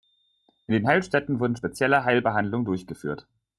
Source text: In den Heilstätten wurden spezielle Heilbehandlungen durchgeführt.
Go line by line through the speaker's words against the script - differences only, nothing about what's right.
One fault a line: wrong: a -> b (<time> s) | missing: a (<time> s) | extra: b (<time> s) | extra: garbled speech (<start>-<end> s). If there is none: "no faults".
no faults